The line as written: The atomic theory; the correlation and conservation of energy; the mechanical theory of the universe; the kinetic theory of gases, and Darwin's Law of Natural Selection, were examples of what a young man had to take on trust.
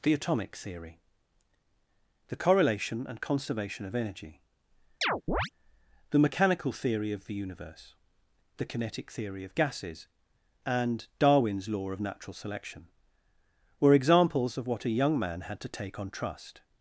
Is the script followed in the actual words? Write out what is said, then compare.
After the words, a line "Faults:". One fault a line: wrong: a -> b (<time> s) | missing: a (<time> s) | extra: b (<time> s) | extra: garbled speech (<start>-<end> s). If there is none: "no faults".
The atomic theory; the correlation and conservation of energy; the mechanical theory of the universe; the kinetic theory of gases, and Darwin's Law of Natural Selection, were examples of what a young man had to take on trust.
Faults:
no faults